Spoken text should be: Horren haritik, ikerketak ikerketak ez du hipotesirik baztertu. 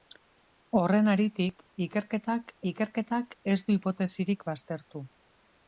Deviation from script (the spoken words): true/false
false